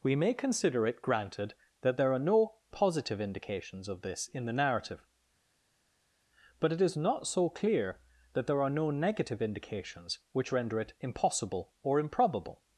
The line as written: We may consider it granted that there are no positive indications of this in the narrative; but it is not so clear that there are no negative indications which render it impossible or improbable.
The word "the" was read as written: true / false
true